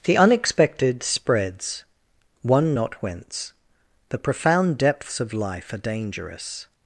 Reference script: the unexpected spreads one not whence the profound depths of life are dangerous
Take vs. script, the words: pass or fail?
pass